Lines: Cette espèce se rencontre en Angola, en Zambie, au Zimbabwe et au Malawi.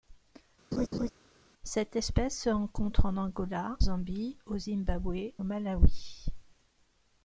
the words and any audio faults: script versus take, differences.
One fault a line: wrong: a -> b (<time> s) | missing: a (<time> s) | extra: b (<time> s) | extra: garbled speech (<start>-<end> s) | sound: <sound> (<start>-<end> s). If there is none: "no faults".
sound: laugh (0.7-1.1 s)
missing: en (3.8 s)
missing: et (5.3 s)